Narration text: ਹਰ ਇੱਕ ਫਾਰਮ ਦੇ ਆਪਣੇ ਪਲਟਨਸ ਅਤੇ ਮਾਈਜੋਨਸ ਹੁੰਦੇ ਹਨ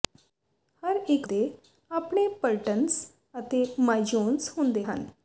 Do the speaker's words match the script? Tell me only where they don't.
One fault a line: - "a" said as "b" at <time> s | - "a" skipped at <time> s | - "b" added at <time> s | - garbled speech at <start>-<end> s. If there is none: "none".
- "ਫਾਰਮ" skipped at 1.3 s